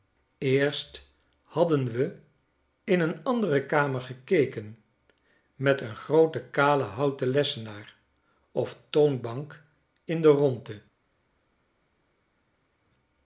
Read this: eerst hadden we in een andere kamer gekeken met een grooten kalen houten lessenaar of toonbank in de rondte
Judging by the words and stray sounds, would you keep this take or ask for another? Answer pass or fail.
pass